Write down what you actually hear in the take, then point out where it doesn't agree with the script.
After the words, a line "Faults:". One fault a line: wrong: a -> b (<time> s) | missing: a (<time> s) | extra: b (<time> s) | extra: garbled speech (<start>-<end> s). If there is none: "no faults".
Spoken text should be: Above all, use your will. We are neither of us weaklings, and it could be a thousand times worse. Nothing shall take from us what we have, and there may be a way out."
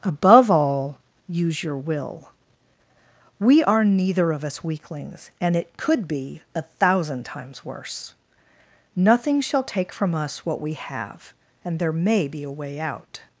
Above all, use your will. We are neither of us weaklings, and it could be a thousand times worse. Nothing shall take from us what we have, and there may be a way out."
Faults:
no faults